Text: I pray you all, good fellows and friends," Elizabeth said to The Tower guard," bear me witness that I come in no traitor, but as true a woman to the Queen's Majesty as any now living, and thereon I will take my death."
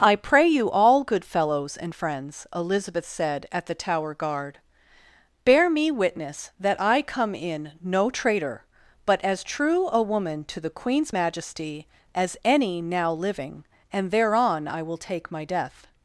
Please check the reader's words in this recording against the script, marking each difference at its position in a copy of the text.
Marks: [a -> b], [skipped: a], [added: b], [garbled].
I pray you all, good fellows and friends," Elizabeth said [to -> at] The Tower guard," bear me witness that I come in no traitor, but as true a woman to the Queen's Majesty as any now living, and thereon I will take my death."